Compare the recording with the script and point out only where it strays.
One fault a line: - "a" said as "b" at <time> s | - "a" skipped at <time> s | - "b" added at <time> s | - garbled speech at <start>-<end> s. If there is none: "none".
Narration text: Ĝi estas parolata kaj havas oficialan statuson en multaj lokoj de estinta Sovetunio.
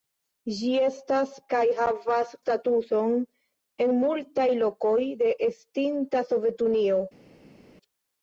- "parolata" skipped at 1.4 s
- "oficialan" skipped at 2.4 s